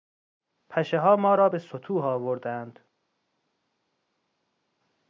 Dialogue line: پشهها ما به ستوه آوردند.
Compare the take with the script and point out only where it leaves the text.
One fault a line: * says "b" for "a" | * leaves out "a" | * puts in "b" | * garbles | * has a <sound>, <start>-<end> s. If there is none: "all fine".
* puts in "را"